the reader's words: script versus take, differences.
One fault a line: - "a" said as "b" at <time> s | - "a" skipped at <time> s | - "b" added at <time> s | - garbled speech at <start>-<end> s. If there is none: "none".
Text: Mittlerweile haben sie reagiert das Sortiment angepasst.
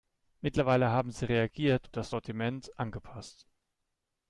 none